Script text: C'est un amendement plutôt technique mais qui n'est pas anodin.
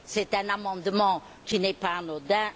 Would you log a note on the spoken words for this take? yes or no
yes